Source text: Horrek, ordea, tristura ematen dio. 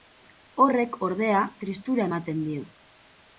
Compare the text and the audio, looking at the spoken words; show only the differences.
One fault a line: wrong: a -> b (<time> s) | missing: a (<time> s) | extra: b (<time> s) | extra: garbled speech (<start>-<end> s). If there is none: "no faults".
no faults